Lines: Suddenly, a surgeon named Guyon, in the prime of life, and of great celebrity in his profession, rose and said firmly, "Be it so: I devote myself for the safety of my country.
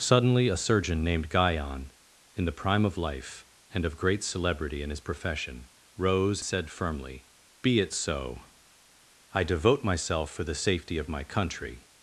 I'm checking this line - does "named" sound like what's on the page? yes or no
yes